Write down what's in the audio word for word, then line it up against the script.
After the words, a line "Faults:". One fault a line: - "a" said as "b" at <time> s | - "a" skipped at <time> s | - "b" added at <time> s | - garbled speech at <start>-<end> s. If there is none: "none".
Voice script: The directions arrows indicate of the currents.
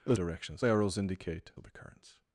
The directions arrows indicate of the currents.
Faults:
none